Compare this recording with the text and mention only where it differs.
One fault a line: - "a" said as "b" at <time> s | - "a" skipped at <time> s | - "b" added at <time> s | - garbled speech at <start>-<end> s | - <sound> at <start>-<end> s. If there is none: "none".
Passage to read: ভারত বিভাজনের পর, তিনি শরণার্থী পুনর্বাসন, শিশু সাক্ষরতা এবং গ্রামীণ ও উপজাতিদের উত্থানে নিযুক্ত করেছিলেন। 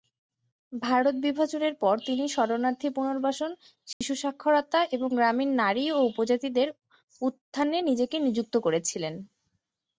- dropout at 3.9-4.0 s
- "নারী" added at 5.6 s
- "নিজেকে" added at 7.9 s